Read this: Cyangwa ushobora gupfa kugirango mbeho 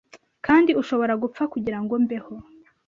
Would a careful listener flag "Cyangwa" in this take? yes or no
yes